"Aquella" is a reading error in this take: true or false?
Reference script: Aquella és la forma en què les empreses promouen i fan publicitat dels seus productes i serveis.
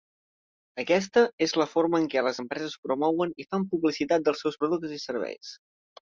true